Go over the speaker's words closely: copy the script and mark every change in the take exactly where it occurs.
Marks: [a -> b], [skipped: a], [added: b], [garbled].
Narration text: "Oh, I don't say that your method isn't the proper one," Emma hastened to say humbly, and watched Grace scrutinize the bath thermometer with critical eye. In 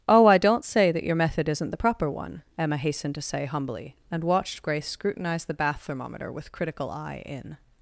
"Oh, I don't say that your method isn't the proper one," Emma hastened to say humbly, and watched Grace scrutinize the bath thermometer with critical eye. In